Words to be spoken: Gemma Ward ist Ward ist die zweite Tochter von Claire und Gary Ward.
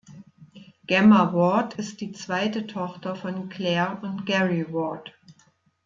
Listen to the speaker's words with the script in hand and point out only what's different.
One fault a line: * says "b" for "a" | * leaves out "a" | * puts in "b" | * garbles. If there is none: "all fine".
* leaves out "Ward ist"